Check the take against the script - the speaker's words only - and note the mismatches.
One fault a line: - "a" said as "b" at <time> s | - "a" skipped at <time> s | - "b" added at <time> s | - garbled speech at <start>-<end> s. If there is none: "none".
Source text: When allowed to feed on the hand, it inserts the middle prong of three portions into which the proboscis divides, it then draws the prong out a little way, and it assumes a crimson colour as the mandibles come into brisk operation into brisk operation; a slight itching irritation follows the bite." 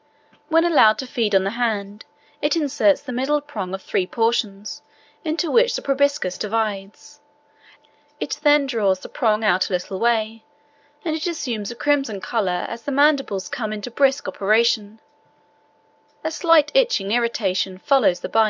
- "into brisk operation" skipped at 15.0 s